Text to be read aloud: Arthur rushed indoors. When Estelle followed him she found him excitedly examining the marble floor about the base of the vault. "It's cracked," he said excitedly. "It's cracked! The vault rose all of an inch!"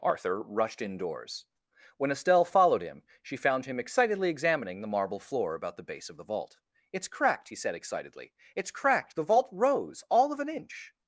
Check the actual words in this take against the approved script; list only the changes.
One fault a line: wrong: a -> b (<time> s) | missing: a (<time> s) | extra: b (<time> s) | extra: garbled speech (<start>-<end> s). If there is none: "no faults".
no faults